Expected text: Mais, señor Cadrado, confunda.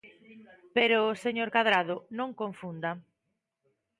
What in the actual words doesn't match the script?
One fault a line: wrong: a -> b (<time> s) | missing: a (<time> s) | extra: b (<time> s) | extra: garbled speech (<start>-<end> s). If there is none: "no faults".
wrong: Mais -> Pero (0.8 s)
extra: non (2.2 s)